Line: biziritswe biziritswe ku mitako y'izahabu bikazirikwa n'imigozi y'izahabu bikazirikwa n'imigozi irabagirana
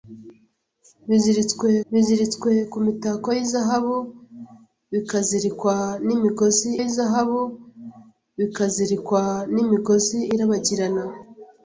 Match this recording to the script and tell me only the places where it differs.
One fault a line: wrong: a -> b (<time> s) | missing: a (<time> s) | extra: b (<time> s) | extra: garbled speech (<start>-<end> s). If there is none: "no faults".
no faults